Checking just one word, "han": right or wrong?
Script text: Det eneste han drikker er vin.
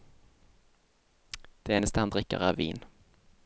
right